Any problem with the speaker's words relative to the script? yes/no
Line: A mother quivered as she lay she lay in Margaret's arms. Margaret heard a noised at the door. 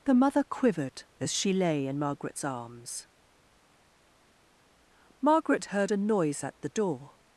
yes